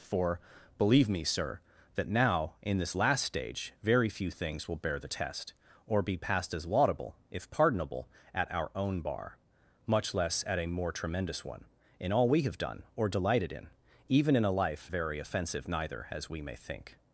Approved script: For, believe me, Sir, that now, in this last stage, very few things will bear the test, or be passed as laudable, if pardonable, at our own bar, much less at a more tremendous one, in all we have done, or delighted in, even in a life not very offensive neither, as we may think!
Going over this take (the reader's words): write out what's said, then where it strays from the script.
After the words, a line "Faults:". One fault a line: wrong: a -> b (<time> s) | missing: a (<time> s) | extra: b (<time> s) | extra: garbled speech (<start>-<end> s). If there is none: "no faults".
For, believe me, Sir, that now, in this last stage, very few things will bear the test, or be passed as laudable, if pardonable, at our own bar, much less at a more tremendous one, in all we have done, or delighted in, even in a life very offensive neither, as we may think!
Faults:
missing: not (14.9 s)